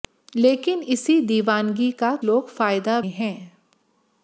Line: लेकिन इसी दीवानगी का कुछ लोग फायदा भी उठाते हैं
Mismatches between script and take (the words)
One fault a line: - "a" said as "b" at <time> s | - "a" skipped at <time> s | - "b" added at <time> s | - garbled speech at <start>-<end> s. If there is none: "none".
- "कुछ" skipped at 2.1 s
- "भी उठाते" skipped at 3.0 s